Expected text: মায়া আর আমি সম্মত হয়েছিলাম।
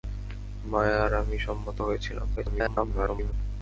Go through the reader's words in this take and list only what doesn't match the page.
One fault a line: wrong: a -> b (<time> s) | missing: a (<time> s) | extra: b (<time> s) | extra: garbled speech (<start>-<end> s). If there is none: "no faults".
extra: garbled speech (2.4-3.3 s)